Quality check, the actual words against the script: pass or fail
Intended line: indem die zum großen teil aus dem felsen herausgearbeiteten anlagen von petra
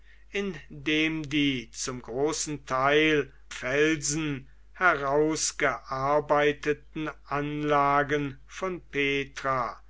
fail